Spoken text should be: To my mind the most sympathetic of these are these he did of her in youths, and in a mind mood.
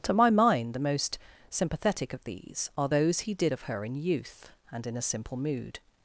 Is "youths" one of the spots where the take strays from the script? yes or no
yes